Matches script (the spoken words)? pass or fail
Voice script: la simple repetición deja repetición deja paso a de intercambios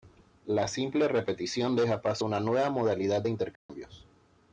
fail